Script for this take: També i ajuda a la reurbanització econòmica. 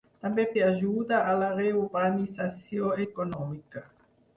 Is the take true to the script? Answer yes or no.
yes